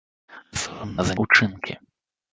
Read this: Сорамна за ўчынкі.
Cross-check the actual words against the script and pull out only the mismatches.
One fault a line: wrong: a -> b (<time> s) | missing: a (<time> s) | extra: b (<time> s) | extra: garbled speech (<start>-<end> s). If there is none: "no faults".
no faults